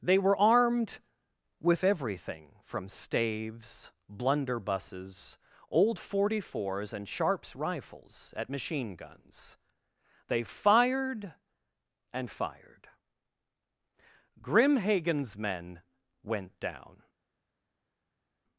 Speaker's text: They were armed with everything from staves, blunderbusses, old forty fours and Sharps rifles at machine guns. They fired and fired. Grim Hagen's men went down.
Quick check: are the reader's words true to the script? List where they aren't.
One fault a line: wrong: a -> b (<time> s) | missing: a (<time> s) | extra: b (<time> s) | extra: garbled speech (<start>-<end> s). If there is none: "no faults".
no faults